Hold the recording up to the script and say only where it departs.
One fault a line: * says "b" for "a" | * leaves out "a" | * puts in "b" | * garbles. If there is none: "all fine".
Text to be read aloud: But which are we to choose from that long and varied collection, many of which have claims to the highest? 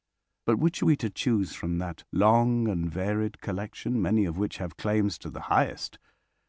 all fine